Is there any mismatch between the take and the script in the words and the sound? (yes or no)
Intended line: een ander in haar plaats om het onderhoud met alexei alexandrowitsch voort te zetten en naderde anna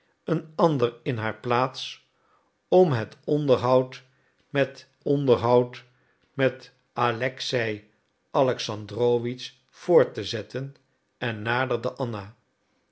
yes